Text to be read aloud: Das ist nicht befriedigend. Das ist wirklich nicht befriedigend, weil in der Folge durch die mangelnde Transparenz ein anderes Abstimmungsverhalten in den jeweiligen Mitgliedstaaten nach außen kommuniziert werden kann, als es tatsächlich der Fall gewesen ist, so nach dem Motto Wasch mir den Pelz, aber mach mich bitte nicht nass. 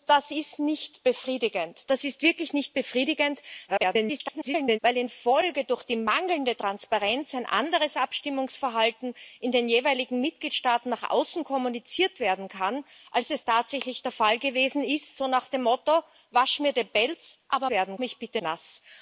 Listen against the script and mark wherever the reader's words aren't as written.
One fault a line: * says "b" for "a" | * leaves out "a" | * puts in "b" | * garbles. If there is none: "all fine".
* garbles
* says "werden" for "mach"
* leaves out "nicht"